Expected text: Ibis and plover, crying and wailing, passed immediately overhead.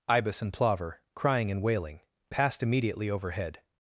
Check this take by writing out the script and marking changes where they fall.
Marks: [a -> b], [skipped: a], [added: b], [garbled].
Ibis and plover, crying and wailing, passed immediately overhead.